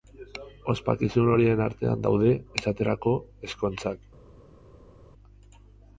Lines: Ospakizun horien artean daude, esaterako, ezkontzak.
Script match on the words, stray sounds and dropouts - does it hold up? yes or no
yes